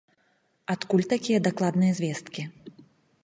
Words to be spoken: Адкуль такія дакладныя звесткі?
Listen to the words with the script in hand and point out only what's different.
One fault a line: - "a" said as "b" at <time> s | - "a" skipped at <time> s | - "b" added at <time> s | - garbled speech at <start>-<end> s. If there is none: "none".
none